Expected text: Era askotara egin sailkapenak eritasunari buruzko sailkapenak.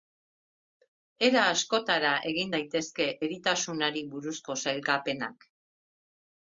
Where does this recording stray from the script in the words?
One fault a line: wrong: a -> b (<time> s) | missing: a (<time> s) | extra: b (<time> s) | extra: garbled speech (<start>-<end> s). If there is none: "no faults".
wrong: sailkapenak -> daitezke (2.6 s)